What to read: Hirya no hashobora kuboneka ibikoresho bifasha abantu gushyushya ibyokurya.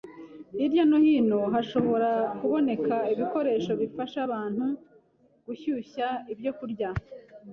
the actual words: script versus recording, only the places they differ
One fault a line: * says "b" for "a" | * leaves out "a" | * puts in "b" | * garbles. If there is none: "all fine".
* puts in "hino"